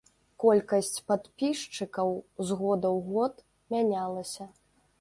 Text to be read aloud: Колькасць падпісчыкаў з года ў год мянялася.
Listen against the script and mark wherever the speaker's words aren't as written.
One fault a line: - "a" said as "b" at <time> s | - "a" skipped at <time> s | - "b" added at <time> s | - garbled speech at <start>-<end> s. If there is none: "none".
none